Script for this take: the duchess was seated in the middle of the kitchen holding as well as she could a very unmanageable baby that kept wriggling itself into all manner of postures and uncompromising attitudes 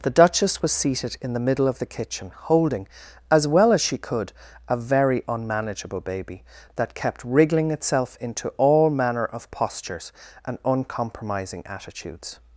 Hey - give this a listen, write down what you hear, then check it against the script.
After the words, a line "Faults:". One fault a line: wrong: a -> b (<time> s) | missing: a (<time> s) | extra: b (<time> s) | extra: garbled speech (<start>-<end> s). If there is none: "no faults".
the duchess was seated in the middle of the kitchen holding as well as she could a very unmanageable baby that kept wriggling itself into all manner of postures and uncompromising attitudes
Faults:
no faults